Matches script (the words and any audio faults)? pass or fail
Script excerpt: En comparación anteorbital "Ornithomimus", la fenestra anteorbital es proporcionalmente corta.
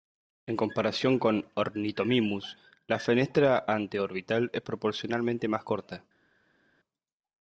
fail